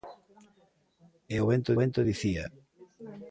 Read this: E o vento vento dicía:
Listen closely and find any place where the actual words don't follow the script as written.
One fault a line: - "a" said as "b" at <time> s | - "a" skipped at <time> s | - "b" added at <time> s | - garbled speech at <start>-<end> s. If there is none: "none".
none